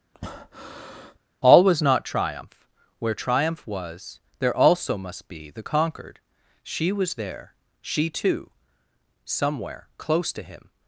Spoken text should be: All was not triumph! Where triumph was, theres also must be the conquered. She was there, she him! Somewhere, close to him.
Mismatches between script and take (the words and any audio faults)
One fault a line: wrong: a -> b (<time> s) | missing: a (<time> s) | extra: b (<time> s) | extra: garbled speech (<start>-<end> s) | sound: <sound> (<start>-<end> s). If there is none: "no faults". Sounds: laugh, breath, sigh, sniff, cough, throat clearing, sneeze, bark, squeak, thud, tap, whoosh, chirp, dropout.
sound: breath (0.1-1.2 s)
wrong: theres -> there (4.4 s)
wrong: him -> too (8.1 s)